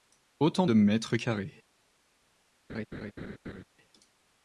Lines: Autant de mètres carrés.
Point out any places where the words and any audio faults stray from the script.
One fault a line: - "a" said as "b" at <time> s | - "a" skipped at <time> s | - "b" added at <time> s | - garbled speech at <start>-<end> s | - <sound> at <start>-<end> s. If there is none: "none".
- laugh at 2.7-3.6 s